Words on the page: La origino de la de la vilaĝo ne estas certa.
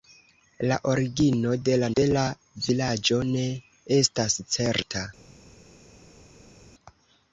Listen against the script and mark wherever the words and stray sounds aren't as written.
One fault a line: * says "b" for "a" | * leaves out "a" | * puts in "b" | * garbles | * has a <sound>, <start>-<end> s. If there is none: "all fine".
all fine